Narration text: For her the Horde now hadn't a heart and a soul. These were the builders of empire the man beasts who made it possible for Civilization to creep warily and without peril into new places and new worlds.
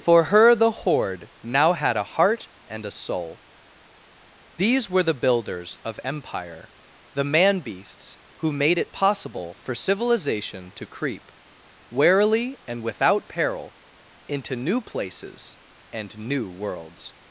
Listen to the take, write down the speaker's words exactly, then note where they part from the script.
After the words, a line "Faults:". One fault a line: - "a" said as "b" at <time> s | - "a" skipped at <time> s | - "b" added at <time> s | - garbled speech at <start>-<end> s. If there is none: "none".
For her the Horde now had a heart and a soul. These were the builders of empire the man beasts who made it possible for Civilization to creep warily and without peril into new places and new worlds.
Faults:
- "hadn't" said as "had" at 1.7 s